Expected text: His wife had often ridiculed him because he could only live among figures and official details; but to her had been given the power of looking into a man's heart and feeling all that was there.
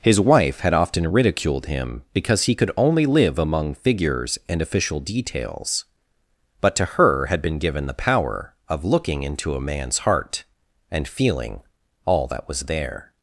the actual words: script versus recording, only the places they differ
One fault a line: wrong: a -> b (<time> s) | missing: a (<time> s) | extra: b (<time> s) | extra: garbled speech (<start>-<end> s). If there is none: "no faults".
no faults